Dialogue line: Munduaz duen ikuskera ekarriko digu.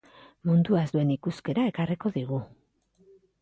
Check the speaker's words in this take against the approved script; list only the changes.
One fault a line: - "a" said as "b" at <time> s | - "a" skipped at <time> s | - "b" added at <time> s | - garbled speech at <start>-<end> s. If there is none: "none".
none